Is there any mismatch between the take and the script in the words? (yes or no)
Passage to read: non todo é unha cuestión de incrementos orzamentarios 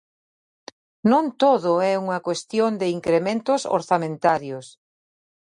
no